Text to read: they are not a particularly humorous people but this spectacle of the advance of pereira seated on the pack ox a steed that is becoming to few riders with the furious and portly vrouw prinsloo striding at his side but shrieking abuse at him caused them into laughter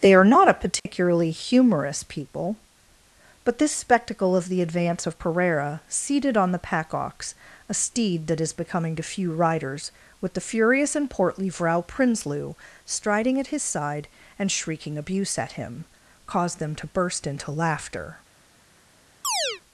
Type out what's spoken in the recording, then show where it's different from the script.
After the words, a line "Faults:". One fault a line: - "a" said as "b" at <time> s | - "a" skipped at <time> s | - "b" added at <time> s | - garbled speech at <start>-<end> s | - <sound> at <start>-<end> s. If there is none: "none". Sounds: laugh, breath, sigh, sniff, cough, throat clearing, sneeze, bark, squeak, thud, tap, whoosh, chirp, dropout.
they are not a particularly humorous people but this spectacle of the advance of pereira seated on the pack ox a steed that is becoming to few riders with the furious and portly vrouw prinsloo striding at his side and shrieking abuse at him caused them to burst into laughter
Faults:
- dropout at 0.8-0.9 s
- "but" said as "and" at 14.4 s
- "to burst" added at 16.8 s
- chirp at 19.2-19.6 s